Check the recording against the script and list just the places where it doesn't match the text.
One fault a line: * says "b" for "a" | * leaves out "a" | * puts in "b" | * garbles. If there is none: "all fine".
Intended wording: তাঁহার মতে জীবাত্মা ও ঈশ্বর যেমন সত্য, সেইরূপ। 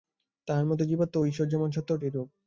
all fine